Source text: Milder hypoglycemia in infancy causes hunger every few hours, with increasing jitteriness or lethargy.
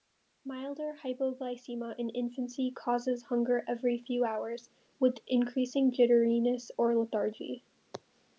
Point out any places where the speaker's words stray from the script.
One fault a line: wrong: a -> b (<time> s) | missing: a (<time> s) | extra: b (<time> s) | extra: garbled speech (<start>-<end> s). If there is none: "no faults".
no faults